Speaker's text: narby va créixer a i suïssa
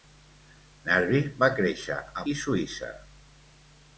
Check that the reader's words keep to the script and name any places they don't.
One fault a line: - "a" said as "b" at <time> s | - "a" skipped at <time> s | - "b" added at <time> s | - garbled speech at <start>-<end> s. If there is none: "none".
none